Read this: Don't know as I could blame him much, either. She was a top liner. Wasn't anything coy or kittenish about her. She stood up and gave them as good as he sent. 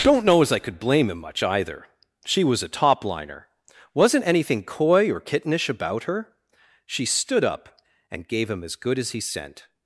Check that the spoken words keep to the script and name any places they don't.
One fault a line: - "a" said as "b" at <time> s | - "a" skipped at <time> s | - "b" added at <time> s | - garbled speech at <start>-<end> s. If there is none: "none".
- "them" said as "him" at 8.5 s